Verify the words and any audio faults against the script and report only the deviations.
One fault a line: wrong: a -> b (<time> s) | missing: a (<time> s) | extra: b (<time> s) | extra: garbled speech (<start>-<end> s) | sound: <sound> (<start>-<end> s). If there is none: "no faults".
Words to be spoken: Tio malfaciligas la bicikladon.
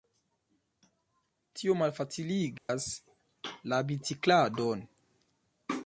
sound: dropout (2.6-2.7 s)